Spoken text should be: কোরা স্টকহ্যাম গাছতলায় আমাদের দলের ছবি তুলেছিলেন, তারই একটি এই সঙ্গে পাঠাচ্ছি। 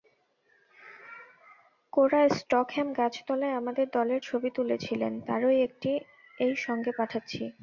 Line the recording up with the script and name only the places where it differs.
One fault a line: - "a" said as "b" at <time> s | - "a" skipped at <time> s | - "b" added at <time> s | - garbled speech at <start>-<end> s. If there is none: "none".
none